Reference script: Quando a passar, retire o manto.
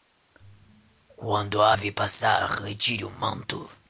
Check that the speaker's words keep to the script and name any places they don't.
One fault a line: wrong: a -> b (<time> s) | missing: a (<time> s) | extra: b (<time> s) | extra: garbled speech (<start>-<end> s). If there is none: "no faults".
extra: ave (1.7 s)